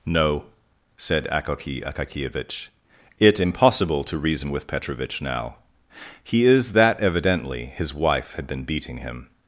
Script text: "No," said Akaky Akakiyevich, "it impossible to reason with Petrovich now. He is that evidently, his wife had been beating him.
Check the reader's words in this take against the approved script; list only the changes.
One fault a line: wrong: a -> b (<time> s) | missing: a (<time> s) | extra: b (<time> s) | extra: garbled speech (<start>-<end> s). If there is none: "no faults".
no faults